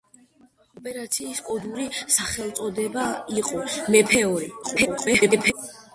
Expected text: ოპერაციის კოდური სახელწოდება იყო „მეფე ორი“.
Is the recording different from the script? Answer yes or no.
yes